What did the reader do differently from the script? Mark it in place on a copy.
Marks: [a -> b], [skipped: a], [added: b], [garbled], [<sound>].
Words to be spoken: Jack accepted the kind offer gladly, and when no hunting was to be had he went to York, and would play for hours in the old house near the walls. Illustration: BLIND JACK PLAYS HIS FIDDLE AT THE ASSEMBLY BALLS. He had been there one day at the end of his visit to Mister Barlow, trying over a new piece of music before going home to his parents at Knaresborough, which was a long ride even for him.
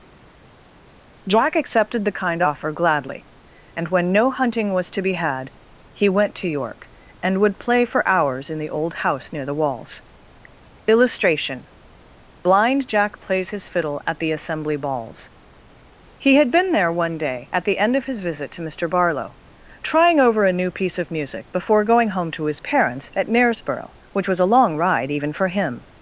Jack accepted the kind offer gladly, and when no hunting was to be had he went to York, and would play for hours in the old house near the walls. Illustration: BLIND JACK PLAYS HIS FIDDLE AT THE ASSEMBLY BALLS. He had been there one day at the end of his visit to Mister Barlow, trying over a new piece of music before going home to his parents at Knaresborough, which was a long ride even for him.